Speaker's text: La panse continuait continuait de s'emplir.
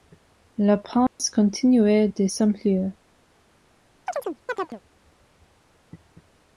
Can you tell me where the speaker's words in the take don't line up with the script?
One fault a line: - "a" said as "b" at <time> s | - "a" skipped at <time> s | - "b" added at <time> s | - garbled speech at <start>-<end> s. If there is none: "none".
- "continuait" skipped at 2.1 s